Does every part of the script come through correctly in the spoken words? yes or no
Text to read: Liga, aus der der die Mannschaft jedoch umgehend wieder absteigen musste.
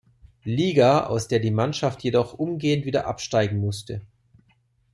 no